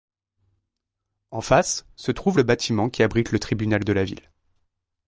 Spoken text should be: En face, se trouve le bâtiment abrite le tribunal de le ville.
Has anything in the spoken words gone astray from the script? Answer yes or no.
yes